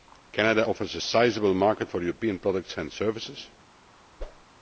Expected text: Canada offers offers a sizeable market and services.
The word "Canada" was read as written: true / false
true